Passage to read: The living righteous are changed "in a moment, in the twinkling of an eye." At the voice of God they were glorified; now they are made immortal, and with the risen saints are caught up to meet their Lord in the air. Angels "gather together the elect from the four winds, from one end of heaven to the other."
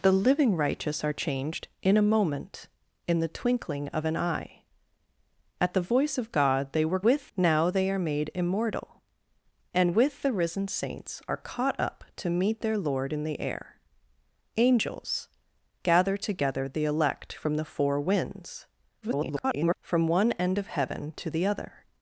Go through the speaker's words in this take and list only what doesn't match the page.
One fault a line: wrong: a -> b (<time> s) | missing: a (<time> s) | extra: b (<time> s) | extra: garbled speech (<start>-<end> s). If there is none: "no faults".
wrong: glorified -> with (7.1 s)
extra: garbled speech (19.0-19.8 s)